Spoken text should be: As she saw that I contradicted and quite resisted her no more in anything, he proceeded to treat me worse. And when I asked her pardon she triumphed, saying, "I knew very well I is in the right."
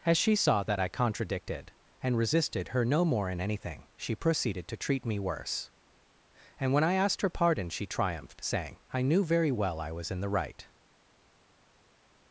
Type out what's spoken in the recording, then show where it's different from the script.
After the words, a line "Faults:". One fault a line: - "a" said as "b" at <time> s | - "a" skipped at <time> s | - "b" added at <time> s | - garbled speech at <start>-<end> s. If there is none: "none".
As she saw that I contradicted and resisted her no more in anything, she proceeded to treat me worse. And when I asked her pardon she triumphed, saying, "I knew very well I was in the right."
Faults:
- "quite" skipped at 2.2 s
- "he" said as "she" at 4.0 s
- "is" said as "was" at 9.9 s